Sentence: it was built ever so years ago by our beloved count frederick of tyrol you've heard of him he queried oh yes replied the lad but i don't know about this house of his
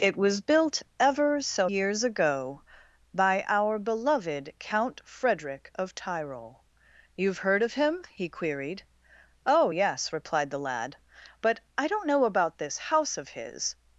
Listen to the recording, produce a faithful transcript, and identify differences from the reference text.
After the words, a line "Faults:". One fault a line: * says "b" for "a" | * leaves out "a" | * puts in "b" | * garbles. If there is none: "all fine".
it was built ever so years ago by our beloved count frederick of tyrol you've heard of him he queried oh yes replied the lad but i don't know about this house of his
Faults:
all fine